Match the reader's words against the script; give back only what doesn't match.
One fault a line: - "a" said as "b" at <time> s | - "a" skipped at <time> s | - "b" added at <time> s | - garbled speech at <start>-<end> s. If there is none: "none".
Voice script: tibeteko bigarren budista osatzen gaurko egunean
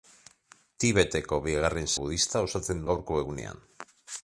none